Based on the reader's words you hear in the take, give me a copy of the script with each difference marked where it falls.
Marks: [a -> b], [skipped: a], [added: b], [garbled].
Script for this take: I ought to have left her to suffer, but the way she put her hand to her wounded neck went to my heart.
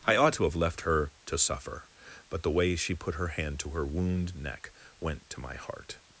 I ought to have left her to suffer, but the way she put her hand to her [wounded -> wound] neck went to my heart.